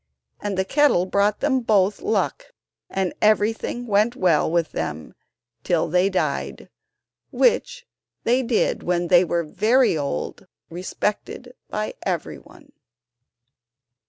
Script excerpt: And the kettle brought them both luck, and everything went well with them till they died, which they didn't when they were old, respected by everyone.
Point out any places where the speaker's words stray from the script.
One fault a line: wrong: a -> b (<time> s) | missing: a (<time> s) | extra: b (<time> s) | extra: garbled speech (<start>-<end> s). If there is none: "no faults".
wrong: didn't -> did (8.4 s)
extra: very (9.4 s)